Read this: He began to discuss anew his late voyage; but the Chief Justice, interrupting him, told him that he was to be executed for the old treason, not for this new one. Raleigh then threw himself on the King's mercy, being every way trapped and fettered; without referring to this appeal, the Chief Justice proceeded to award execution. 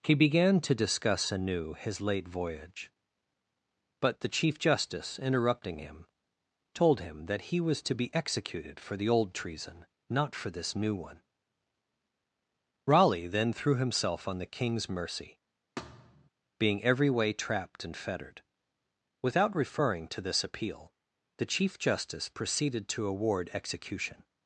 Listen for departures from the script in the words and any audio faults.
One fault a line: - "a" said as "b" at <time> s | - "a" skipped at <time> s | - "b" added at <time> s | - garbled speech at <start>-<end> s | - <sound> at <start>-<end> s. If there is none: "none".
- thud at 15.8-16.3 s